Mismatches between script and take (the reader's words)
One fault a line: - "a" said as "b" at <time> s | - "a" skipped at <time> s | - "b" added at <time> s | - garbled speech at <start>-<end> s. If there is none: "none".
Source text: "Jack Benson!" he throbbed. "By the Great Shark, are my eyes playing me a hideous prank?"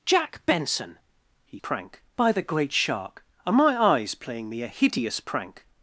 - "throbbed" said as "prank" at 1.6 s